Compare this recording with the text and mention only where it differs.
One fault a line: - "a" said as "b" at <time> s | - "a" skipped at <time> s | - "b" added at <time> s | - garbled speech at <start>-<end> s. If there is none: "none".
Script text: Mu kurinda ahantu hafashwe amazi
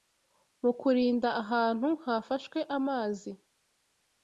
none